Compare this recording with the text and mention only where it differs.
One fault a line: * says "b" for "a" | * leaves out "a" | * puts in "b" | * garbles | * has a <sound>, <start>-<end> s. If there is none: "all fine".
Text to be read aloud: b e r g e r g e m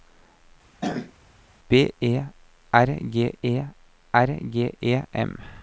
* has a throat clearing, 0.8-1.1 s